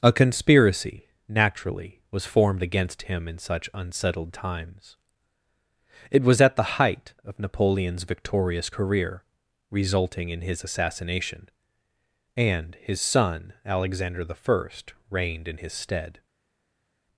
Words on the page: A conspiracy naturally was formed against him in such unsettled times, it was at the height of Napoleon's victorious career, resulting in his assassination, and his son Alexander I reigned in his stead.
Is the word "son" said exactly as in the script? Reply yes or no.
yes